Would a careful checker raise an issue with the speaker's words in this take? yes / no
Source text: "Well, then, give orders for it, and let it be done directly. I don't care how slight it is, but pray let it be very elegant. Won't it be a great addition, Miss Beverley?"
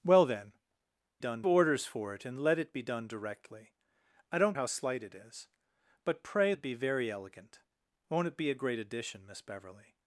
yes